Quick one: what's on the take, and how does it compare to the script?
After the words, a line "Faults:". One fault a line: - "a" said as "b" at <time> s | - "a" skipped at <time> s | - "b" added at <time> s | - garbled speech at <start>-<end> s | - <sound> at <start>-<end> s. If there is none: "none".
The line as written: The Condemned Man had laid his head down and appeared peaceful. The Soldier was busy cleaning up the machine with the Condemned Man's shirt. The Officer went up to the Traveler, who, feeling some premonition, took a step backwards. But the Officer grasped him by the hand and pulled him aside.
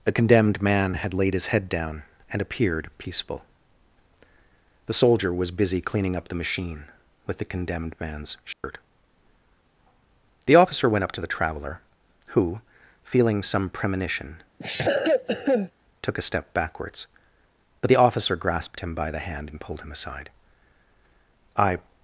The Condemned Man had laid his head down and appeared peaceful. The Soldier was busy cleaning up the machine with the Condemned Man's shirt. The Officer went up to the Traveler, who, feeling some premonition, took a step backwards. But the Officer grasped him by the hand and pulled him aside. "I
Faults:
- dropout at 8.5-8.6 s
- cough at 14.6-15.7 s
- "I" added at 21.6 s